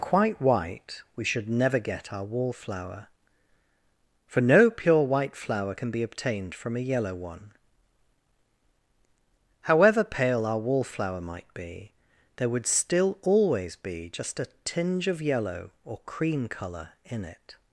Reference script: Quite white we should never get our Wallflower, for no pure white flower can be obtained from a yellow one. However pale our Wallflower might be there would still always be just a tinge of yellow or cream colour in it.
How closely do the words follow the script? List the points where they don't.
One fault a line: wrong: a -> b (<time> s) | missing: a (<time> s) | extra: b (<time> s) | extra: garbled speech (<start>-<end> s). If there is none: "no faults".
no faults